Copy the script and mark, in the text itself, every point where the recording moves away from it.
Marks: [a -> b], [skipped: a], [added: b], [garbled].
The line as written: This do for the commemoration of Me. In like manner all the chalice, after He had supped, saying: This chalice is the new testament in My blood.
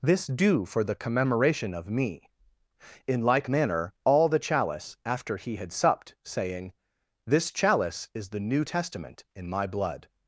This do for the commemoration of Me. In like manner all the chalice, after He had supped, saying: This chalice is the new testament in My blood.